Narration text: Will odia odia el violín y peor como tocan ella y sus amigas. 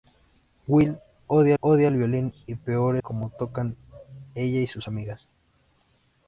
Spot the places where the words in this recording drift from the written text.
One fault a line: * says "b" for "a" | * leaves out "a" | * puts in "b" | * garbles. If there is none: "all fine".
all fine